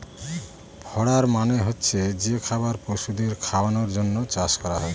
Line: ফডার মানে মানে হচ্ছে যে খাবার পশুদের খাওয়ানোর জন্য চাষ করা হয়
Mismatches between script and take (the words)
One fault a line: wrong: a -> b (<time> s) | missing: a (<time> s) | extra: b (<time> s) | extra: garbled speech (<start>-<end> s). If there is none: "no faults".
missing: মানে (1.6 s)